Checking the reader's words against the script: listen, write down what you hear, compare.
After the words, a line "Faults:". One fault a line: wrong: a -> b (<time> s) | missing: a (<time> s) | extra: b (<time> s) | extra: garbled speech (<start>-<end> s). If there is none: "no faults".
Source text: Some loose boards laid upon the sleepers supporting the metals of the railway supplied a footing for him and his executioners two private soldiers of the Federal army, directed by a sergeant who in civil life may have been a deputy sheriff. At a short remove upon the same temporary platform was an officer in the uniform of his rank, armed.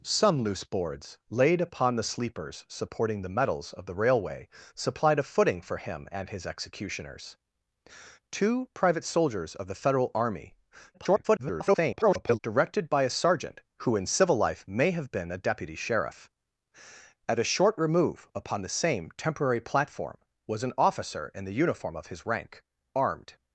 Some loose boards laid upon the sleepers supporting the metals of the railway supplied a footing for him and his executioners two private soldiers of the Federal army, [garbled] directed by a sergeant who in civil life may have been a deputy sheriff. At a short remove upon the same temporary platform was an officer in the uniform of his rank, armed.
Faults:
extra: garbled speech (10.9-12.4 s)